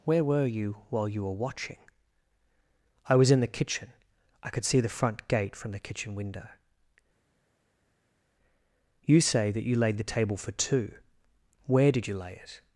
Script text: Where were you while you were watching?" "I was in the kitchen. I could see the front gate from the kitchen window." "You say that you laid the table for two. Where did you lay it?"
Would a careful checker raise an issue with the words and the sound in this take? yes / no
no